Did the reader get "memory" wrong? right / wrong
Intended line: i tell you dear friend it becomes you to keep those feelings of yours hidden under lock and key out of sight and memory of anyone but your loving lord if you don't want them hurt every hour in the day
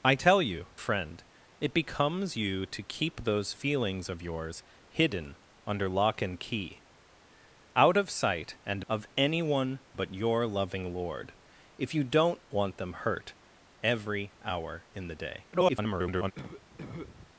wrong